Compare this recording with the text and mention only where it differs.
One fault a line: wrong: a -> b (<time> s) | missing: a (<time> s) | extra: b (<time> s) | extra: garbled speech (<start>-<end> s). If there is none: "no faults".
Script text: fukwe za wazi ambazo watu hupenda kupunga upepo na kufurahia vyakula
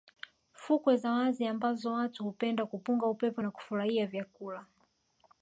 no faults